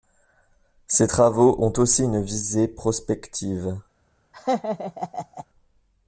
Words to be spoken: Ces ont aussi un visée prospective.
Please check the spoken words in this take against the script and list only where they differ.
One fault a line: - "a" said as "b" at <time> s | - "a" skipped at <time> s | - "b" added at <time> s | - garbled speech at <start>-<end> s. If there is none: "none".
- "travaux" added at 1.1 s
- "un" said as "une" at 2.0 s